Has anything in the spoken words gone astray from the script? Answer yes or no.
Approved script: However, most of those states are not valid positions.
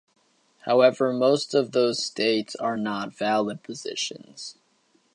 no